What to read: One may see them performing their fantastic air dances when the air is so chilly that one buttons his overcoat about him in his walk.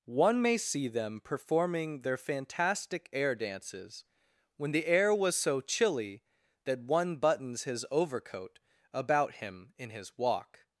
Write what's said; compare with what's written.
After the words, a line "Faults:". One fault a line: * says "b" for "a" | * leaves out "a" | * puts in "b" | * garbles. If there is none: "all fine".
One may see them performing their fantastic air dances when the air was so chilly that one buttons his overcoat about him in his walk.
Faults:
* says "was" for "is"